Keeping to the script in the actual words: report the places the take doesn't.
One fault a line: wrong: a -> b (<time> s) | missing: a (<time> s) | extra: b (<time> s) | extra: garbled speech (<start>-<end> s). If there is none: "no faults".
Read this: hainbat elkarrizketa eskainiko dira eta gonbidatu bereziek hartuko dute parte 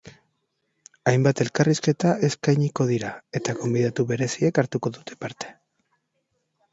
no faults